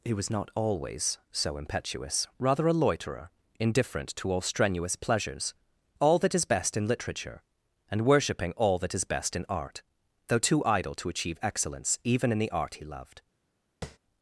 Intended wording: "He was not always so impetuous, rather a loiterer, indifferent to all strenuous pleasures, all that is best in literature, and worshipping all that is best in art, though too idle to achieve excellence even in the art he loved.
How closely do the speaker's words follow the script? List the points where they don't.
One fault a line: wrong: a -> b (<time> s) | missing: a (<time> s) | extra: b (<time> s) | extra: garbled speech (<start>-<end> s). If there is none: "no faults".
no faults